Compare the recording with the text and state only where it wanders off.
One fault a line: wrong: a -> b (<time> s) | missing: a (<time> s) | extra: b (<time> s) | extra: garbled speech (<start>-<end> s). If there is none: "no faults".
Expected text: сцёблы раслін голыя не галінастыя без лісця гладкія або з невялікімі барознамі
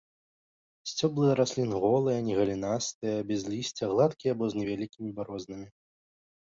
no faults